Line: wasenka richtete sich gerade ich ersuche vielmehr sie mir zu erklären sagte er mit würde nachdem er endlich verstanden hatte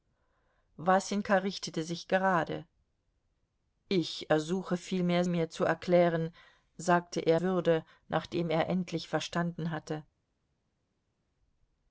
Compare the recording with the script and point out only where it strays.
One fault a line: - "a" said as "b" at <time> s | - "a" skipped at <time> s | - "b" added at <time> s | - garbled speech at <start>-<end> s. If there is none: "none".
- "sie" skipped at 5.2 s
- "mit" skipped at 7.4 s